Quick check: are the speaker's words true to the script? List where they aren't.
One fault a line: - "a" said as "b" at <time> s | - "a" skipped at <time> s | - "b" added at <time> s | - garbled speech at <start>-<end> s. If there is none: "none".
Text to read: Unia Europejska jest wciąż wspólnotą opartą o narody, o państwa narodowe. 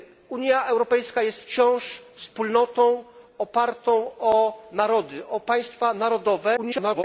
- garbled speech at 6.6-7.0 s